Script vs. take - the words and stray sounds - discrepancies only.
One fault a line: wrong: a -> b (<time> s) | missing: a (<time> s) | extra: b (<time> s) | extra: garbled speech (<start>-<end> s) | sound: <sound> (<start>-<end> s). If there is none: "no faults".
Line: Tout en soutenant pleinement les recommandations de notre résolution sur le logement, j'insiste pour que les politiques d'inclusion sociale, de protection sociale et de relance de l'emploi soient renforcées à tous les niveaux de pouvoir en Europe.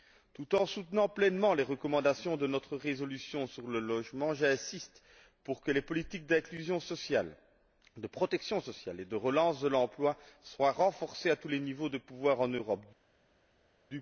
no faults